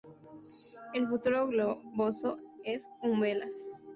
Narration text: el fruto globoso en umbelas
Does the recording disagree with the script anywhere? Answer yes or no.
no